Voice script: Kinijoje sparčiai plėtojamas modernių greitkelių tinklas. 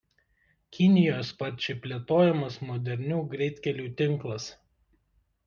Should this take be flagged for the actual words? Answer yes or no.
no